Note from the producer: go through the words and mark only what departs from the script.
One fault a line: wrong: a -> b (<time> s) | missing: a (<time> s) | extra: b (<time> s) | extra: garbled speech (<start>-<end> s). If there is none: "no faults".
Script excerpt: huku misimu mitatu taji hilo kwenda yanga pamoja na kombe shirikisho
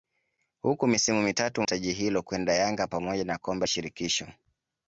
no faults